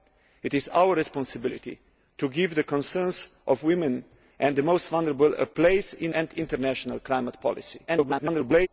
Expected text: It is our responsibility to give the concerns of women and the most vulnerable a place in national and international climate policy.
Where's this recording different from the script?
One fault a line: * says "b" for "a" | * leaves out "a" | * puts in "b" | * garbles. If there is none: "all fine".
* leaves out "national"
* garbles